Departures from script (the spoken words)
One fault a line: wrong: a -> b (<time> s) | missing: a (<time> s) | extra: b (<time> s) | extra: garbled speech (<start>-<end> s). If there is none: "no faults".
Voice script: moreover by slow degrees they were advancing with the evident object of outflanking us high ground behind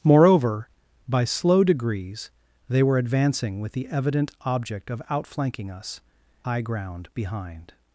no faults